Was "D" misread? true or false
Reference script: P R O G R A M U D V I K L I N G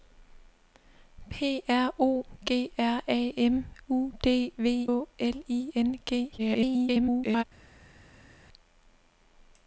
false